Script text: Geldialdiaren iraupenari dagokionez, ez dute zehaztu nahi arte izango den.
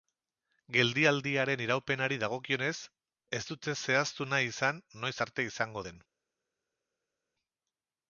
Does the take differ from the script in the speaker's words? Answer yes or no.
yes